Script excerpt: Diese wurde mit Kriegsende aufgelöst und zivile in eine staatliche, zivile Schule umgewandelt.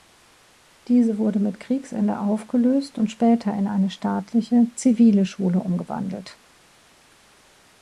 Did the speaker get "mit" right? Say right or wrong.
right